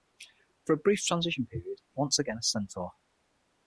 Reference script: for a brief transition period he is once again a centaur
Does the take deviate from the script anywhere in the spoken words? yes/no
yes